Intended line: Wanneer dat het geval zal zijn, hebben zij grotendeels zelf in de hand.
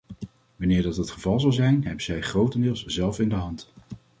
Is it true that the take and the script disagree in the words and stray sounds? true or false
false